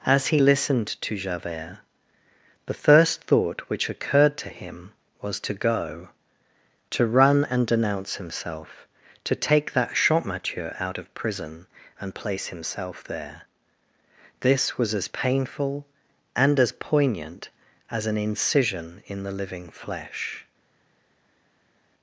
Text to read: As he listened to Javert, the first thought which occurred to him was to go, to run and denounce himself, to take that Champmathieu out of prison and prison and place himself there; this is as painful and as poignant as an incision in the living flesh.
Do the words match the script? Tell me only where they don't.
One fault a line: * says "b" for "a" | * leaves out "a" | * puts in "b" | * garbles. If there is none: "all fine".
* leaves out "prison and"
* says "was" for "is"